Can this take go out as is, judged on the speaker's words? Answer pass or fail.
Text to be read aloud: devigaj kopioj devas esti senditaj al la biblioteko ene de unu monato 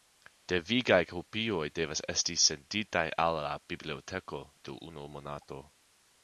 fail